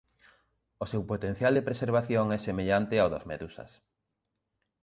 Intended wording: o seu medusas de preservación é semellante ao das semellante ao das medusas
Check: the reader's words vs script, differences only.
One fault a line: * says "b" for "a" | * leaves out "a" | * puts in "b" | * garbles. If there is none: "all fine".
* says "potencial" for "medusas"
* leaves out "semellante ao das"